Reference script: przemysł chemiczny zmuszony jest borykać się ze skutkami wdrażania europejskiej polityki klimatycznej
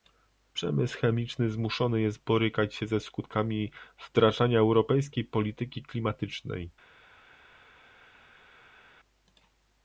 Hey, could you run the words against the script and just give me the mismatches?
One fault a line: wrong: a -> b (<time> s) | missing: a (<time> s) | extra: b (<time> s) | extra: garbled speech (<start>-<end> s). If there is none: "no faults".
no faults